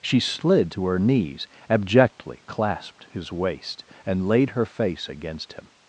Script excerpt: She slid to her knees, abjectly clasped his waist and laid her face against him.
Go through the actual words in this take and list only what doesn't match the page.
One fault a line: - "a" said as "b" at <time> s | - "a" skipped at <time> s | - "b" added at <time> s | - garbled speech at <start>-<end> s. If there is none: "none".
none